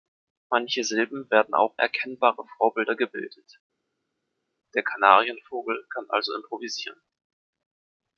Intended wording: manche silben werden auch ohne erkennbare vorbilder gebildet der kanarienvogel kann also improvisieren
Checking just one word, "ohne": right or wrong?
wrong